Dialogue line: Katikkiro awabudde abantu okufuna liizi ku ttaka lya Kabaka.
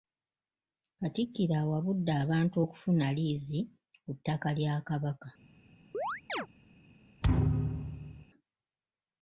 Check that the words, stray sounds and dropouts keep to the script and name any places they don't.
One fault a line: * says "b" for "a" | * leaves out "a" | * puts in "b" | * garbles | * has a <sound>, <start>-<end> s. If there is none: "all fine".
* has a chirp, 5.9-6.5 s
* has a thud, 7.2-8.3 s